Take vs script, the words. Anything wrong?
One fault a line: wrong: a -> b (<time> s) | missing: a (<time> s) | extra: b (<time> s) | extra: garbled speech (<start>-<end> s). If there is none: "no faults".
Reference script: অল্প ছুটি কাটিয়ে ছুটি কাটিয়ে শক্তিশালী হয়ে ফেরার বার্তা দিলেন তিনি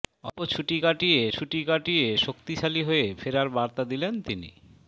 no faults